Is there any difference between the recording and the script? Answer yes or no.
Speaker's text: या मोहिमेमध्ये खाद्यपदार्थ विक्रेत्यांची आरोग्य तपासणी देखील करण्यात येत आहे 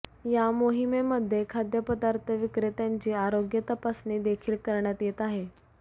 no